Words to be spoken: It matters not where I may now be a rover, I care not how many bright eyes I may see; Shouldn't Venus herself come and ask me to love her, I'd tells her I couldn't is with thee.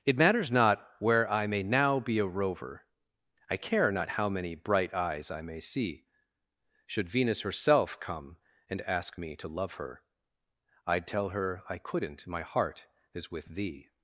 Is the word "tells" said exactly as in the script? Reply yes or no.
no